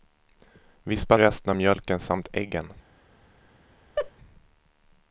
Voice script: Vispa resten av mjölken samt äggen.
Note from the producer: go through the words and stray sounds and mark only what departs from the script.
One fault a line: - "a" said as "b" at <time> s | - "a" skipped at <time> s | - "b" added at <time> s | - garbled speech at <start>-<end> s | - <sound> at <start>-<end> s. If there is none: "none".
- laugh at 4.0-4.1 s